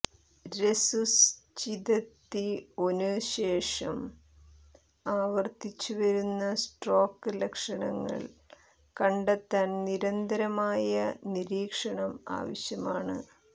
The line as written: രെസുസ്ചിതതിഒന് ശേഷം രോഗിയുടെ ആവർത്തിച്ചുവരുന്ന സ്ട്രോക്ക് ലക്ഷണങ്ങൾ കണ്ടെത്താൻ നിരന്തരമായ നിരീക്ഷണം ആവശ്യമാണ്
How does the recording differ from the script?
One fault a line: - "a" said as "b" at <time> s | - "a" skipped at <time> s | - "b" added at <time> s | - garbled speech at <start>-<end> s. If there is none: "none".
- "രോഗിയുടെ" skipped at 4.0 s